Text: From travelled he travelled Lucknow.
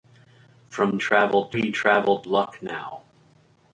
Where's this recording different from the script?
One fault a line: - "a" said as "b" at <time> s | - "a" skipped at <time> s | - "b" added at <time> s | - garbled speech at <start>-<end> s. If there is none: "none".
none